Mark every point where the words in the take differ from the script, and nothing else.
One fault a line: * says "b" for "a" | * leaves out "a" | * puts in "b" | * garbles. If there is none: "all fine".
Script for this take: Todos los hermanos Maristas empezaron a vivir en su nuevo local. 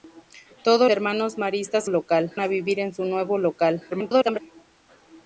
* leaves out "los"
* says "local" for "empezaron"
* garbles